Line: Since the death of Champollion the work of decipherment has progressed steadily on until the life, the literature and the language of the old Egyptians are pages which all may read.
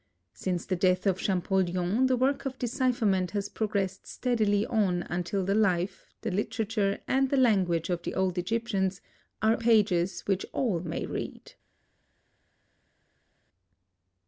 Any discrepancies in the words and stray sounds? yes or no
no